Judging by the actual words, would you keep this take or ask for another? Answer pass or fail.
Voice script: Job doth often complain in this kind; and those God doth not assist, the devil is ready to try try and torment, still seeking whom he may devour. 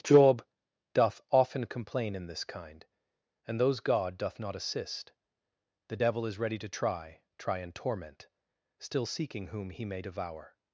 pass